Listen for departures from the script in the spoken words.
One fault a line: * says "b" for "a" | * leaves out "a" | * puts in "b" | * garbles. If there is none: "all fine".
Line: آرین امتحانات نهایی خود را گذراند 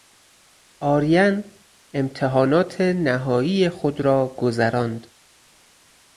all fine